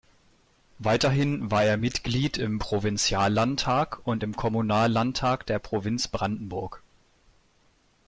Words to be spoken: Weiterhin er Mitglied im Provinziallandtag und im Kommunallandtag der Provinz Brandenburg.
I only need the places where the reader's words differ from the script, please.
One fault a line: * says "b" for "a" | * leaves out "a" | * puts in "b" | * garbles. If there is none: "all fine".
* puts in "war"